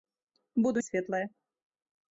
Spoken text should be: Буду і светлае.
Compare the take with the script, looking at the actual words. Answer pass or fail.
pass